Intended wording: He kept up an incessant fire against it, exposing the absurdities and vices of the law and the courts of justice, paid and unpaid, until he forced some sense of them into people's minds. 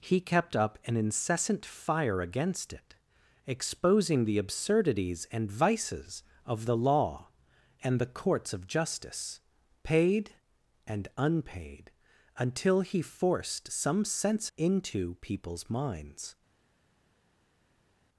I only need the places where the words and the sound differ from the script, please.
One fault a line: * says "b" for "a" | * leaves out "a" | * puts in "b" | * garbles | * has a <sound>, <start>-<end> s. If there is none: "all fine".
* leaves out "of them"